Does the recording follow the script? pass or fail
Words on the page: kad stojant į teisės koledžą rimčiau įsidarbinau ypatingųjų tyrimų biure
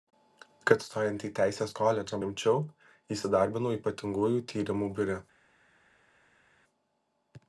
pass